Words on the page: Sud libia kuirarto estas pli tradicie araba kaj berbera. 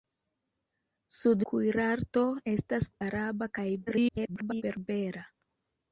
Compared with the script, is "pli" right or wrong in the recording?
wrong